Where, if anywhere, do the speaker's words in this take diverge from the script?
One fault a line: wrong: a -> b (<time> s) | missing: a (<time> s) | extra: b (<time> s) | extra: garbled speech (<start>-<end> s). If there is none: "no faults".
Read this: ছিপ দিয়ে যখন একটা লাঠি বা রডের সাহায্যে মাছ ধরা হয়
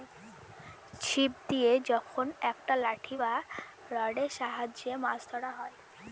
no faults